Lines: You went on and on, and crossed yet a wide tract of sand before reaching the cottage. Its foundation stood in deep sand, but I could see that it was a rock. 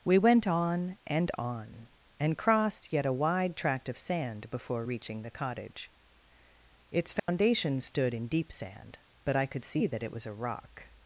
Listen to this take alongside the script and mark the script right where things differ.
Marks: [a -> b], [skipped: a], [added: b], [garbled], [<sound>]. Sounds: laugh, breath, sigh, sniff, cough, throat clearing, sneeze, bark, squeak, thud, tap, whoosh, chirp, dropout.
[You -> We] went on and on, and crossed yet a wide tract of sand before reaching the cottage. Its foundation [dropout] stood in deep sand, but I could see that it was a rock.